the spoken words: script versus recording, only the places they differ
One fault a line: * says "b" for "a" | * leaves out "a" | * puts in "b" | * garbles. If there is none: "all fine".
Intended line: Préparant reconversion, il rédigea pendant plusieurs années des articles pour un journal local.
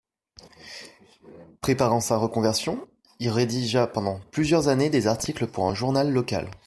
* puts in "sa"